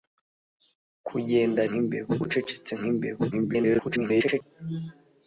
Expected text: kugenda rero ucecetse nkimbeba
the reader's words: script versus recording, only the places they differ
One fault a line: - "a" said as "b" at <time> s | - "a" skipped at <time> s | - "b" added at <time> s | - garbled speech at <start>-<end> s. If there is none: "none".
- "rero" said as "nkimbeba" at 1.7 s
- garbled speech at 3.3-4.4 s